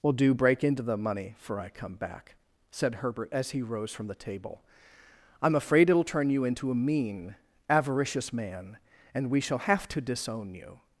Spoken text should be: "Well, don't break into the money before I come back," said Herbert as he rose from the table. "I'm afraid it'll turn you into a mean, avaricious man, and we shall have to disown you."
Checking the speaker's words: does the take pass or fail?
fail